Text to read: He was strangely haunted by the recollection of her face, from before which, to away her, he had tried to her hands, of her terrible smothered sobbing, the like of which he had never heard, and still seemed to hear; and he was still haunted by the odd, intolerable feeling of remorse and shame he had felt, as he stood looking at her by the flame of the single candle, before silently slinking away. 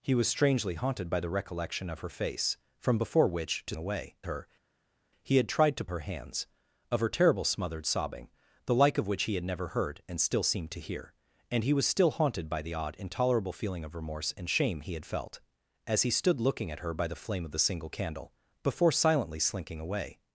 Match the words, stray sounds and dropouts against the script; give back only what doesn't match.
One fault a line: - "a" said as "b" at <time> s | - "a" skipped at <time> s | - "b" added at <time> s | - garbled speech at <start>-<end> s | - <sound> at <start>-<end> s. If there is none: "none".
none